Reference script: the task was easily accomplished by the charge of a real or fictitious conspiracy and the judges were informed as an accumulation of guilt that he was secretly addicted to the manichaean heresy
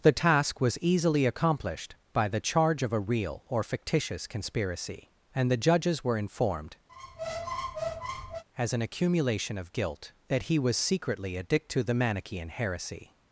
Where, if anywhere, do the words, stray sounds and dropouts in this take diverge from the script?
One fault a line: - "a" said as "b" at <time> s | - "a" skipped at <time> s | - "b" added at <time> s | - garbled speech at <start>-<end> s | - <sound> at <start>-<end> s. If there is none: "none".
- squeak at 6.9-8.4 s